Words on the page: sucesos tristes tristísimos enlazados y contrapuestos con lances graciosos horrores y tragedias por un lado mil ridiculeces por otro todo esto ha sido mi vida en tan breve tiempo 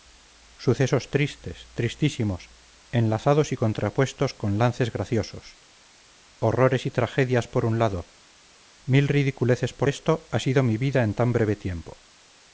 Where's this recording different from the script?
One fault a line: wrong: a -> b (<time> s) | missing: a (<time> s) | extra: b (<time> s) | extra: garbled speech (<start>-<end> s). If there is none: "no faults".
missing: otro todo (9.9 s)